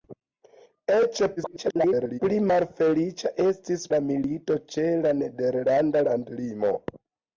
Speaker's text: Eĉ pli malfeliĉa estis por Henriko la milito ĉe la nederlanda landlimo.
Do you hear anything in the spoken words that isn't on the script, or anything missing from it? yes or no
yes